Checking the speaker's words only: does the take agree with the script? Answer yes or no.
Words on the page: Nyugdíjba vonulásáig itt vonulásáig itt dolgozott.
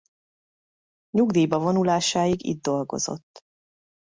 no